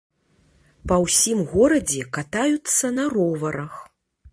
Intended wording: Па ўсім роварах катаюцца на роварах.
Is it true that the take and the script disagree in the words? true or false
true